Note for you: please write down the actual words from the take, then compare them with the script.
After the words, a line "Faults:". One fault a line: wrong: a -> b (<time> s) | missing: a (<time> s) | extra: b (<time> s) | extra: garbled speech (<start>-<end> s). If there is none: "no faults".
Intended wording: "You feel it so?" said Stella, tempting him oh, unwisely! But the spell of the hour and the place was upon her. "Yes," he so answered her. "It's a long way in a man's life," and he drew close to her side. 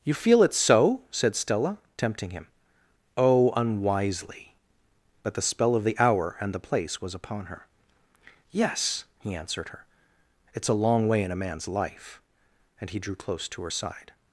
"You feel it so?" said Stella, tempting him oh, unwisely! But the spell of the hour and the place was upon her. "Yes," he answered her. "It's a long way in a man's life," and he drew close to her side.
Faults:
missing: so (9.3 s)